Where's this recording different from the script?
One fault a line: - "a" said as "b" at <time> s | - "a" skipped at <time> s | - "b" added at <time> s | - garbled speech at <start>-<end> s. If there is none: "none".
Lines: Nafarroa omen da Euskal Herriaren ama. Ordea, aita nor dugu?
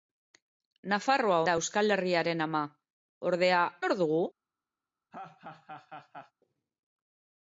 - "omen" skipped at 1.4 s
- "aita" skipped at 3.6 s